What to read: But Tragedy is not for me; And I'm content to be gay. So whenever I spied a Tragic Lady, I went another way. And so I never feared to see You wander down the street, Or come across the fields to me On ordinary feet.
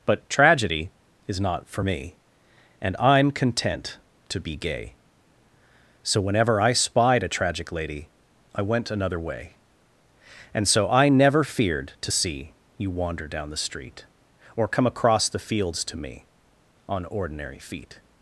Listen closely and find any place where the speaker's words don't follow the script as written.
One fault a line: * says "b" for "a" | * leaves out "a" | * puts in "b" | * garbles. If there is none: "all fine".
all fine